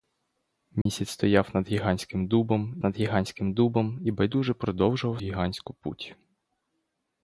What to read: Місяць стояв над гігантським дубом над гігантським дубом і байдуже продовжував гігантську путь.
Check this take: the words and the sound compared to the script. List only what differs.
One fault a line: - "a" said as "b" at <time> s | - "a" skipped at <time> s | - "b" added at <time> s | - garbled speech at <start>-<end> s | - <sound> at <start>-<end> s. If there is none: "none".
- dropout at 0.8-0.9 s